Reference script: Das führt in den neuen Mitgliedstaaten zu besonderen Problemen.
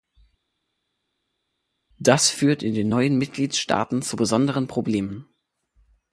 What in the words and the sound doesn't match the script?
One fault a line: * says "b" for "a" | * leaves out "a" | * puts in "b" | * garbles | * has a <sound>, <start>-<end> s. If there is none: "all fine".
all fine